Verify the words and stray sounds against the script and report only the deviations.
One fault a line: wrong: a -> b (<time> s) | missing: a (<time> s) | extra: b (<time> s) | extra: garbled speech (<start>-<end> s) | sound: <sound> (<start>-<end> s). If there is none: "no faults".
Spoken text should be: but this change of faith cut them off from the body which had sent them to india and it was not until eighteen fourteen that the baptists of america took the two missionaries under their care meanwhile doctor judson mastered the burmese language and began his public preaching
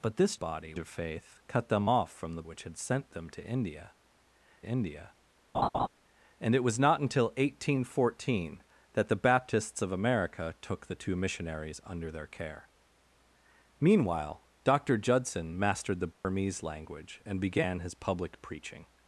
wrong: change -> body (0.3 s)
missing: body (2.4 s)
extra: india (4.6 s)
sound: laugh (5.5-5.9 s)
sound: dropout (16.1-16.2 s)